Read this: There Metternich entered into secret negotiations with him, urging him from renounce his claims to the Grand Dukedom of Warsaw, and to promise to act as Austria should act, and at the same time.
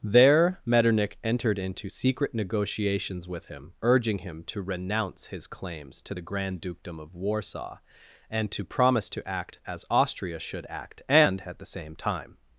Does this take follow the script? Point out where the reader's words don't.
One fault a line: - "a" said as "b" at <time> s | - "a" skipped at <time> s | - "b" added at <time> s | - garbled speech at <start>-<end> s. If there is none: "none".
- "from" said as "to" at 4.4 s